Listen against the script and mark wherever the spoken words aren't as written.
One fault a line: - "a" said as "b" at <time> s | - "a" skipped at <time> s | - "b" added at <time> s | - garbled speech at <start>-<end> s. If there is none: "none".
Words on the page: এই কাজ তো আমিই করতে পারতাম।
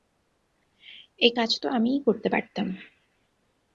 none